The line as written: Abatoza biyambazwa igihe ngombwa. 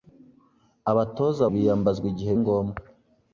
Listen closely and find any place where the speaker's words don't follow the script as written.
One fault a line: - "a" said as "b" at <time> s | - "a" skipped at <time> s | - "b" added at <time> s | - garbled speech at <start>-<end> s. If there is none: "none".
none